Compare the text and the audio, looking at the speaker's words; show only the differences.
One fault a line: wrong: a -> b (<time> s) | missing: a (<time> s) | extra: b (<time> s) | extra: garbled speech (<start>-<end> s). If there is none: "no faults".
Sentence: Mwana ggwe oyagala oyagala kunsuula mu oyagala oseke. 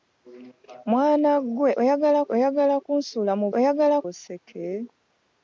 no faults